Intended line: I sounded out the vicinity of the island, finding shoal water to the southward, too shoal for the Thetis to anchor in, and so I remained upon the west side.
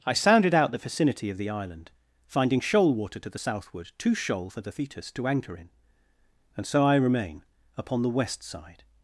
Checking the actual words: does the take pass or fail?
fail